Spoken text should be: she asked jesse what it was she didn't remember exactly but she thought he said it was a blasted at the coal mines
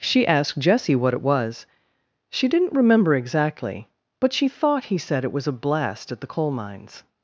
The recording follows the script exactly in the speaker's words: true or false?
false